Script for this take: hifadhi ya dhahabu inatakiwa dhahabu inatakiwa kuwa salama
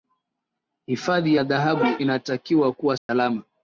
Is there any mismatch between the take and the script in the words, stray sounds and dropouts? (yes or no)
yes